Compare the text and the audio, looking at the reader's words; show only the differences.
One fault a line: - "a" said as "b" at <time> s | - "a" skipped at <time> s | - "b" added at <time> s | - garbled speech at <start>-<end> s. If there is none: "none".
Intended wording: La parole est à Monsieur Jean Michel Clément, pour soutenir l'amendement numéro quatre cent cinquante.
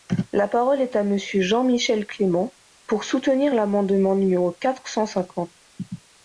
none